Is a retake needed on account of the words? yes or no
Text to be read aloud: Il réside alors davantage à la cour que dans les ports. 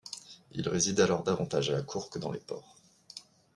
no